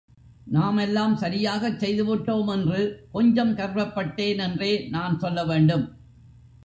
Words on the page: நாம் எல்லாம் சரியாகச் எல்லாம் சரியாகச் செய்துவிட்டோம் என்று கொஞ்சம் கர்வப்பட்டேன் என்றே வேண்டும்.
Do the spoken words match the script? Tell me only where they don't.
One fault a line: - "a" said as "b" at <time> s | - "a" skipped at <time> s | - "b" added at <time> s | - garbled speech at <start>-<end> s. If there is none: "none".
- "எல்லாம் சரியாகச்" skipped at 1.8 s
- "நான் சொல்ல" added at 4.9 s